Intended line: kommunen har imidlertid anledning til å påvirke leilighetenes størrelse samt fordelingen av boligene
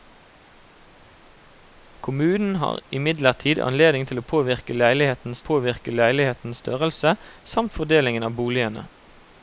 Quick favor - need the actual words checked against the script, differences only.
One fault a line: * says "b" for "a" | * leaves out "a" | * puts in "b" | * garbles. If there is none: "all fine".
* puts in "påvirke leilighetenes"